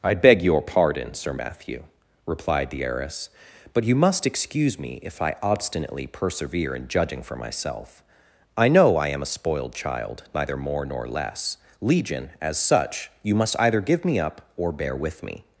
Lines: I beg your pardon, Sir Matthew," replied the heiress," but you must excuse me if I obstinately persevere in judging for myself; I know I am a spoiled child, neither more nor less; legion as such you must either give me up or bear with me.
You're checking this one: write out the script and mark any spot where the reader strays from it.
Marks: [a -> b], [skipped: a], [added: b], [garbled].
I beg your pardon, Sir Matthew," replied the heiress," but you must excuse me if I obstinately persevere in judging for myself; I know I am a spoiled child, neither more nor less; legion as such you must either give me up or bear with me.